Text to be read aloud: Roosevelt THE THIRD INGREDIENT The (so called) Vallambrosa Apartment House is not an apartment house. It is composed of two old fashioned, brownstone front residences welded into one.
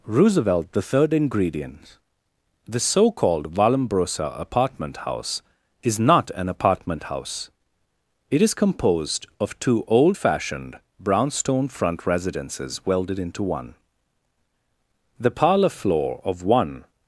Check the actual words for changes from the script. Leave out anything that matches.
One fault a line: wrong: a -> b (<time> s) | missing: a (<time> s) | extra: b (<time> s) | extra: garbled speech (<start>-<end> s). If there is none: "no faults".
extra: The parlor floor of one (15.2 s)